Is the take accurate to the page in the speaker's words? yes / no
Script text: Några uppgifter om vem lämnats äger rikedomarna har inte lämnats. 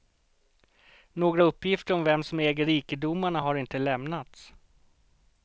no